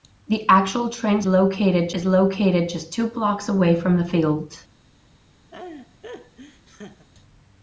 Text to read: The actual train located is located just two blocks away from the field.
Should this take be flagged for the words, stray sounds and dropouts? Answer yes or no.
yes